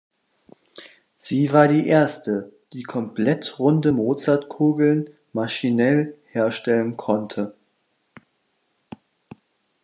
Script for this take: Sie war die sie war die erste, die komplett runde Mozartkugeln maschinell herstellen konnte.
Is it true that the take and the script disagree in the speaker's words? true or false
true